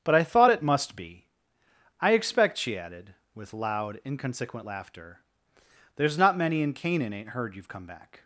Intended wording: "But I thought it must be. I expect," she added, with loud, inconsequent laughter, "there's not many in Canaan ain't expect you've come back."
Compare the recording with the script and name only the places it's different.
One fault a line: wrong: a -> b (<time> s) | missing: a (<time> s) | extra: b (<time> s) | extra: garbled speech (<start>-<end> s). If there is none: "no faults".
wrong: expect -> heard (7.3 s)